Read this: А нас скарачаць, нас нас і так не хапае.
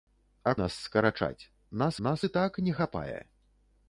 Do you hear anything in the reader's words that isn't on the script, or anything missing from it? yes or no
no